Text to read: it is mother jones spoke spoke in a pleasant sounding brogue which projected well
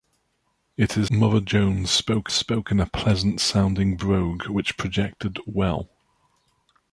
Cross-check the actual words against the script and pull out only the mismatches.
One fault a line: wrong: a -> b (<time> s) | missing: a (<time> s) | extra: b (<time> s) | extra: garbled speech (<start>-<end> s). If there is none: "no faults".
no faults